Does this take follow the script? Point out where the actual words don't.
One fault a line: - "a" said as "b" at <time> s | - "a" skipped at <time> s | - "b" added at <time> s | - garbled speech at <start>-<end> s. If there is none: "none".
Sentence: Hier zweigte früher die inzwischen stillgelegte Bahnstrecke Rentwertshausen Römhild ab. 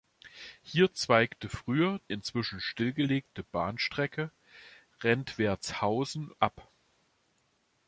- "die" skipped at 2.0 s
- "Römhild" skipped at 6.3 s